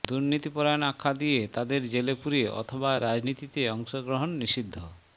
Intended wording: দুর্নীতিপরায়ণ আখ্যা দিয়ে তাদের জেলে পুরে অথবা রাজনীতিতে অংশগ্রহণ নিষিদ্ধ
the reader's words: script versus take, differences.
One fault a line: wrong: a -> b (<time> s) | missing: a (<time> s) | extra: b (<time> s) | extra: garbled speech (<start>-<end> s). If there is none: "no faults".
no faults